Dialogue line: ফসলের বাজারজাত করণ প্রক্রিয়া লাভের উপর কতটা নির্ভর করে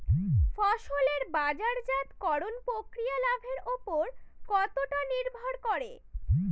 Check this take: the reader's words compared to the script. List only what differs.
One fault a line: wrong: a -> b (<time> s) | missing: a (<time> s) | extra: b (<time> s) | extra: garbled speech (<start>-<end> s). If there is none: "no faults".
no faults